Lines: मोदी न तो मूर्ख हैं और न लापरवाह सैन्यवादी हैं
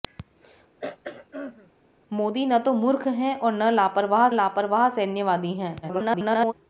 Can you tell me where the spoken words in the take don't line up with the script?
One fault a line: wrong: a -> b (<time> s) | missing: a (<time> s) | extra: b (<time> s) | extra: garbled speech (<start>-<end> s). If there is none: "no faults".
extra: लापरवाह (4.3 s)
extra: garbled speech (5.8-6.5 s)